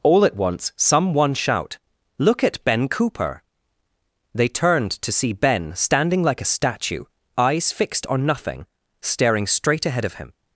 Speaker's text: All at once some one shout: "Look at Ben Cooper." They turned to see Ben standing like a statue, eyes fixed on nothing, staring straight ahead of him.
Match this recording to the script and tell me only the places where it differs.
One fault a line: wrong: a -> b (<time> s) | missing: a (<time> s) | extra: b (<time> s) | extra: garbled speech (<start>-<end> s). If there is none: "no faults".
no faults